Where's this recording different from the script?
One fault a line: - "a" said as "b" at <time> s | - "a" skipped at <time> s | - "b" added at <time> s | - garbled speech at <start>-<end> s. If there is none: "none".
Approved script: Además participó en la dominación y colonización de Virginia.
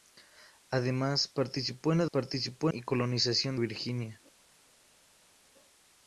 - "dominación" said as "participó" at 2.0 s
- "de" skipped at 3.5 s